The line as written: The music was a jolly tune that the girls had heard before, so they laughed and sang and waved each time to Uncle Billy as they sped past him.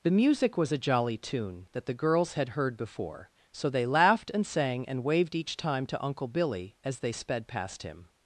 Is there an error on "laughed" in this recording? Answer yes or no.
no